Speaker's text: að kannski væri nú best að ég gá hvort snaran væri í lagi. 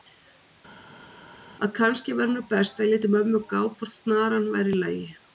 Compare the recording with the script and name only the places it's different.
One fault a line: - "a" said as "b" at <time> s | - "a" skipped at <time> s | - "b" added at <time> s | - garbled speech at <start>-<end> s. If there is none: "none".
- "léti mömmu" added at 2.9 s